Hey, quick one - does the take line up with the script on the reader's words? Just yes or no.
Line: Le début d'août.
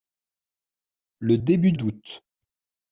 yes